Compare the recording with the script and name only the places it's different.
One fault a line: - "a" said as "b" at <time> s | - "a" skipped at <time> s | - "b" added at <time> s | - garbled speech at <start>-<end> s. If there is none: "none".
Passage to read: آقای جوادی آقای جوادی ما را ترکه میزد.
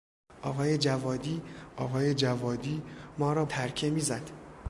none